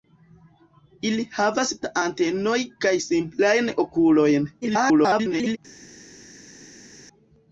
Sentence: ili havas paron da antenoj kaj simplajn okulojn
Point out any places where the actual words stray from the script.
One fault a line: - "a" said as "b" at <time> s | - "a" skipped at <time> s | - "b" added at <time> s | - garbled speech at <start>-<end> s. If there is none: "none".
- "paron" skipped at 1.7 s
- garbled speech at 4.6-5.6 s